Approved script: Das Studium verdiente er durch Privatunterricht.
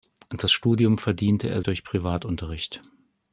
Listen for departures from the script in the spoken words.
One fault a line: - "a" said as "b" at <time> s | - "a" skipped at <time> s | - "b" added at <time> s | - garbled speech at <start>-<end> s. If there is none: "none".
none